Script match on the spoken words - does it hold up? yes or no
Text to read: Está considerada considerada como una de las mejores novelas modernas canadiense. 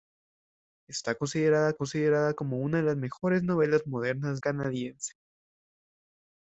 yes